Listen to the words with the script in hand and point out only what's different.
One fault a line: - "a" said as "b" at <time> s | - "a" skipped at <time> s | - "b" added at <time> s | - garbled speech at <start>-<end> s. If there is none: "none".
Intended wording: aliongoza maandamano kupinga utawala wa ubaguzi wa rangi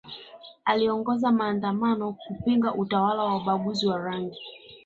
none